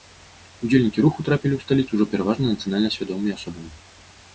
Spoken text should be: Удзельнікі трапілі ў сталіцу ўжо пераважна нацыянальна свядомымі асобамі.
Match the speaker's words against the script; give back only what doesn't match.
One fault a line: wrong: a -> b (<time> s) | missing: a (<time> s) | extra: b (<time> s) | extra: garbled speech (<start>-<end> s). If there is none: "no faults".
extra: руху (1.1 s)